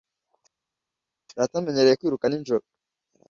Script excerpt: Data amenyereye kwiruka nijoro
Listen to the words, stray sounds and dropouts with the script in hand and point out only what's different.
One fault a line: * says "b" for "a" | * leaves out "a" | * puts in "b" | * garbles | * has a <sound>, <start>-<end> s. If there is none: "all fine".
all fine